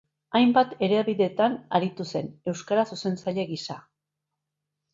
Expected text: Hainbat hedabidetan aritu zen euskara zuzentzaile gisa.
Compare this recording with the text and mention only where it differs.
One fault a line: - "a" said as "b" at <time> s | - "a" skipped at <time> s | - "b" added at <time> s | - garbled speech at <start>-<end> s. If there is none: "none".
none